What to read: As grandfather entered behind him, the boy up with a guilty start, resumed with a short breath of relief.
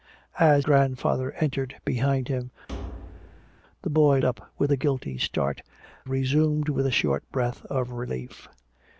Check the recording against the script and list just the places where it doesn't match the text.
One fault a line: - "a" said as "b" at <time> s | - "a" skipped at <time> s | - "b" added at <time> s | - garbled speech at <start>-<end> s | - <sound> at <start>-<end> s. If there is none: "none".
- thud at 2.7-3.6 s